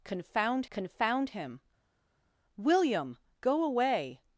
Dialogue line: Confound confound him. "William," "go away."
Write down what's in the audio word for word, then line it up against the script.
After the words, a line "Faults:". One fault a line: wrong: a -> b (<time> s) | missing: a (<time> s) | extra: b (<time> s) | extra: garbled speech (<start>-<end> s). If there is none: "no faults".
Confound confound him. "William," "go away."
Faults:
no faults